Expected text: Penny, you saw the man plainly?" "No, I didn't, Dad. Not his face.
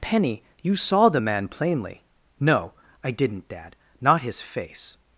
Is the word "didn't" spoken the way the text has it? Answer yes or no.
yes